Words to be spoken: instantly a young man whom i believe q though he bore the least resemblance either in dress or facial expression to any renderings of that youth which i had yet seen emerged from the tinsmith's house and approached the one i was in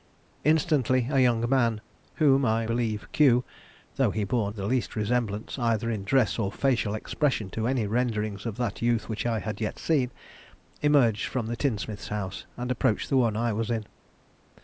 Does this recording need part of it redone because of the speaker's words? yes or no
no